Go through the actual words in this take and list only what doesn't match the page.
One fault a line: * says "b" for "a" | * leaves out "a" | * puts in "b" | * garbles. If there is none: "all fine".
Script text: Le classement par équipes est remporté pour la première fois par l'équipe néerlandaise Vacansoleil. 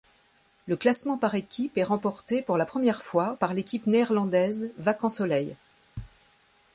all fine